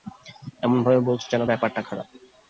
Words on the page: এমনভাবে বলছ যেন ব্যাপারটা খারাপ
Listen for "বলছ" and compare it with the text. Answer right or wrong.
right